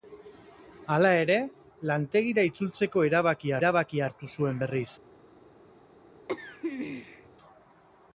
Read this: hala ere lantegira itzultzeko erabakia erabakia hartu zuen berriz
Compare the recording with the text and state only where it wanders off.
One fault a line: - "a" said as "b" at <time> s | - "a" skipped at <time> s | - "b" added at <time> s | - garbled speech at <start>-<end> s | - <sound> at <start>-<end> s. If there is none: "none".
- throat clearing at 6.3-7.3 s